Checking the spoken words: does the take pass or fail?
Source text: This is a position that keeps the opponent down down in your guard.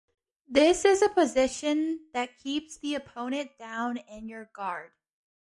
fail